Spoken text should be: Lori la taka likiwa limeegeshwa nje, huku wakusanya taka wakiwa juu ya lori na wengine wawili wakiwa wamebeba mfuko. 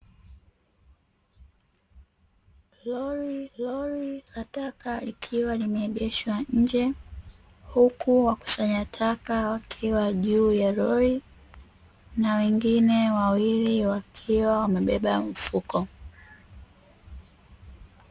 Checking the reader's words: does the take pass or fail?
fail